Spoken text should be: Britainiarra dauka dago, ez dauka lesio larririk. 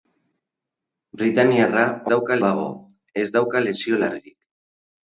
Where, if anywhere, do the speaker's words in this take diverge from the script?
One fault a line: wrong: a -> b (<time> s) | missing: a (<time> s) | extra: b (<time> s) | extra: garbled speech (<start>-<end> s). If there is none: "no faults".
no faults